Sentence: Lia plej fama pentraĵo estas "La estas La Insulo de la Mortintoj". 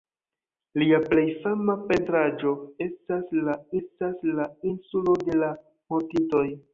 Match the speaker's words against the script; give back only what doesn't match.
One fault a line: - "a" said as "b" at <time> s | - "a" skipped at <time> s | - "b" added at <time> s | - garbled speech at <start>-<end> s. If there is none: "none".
none